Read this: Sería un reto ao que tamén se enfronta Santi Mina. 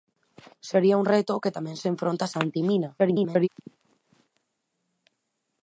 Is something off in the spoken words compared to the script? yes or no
yes